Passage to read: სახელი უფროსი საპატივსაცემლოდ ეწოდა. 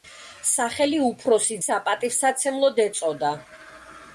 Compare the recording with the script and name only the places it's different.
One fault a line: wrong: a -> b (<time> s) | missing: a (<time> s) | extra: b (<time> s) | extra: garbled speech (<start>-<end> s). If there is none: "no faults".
no faults